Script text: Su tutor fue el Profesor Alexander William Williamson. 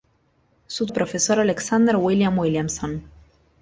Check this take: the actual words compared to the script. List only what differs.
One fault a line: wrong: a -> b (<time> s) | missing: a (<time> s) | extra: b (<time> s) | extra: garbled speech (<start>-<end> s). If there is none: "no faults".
missing: tutor fue (0.9 s)